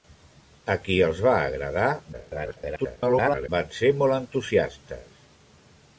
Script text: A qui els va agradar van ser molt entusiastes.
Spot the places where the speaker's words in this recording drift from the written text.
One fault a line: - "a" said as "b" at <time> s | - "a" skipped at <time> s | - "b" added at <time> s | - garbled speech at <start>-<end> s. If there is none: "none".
- garbled speech at 2.1-3.5 s